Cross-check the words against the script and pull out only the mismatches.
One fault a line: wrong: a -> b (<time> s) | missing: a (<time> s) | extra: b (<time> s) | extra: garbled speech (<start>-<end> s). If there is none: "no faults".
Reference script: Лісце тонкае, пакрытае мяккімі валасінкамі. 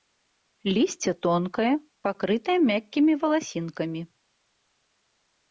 no faults